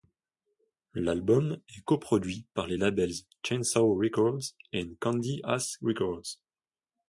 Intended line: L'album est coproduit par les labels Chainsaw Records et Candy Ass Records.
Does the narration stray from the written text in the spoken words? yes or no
no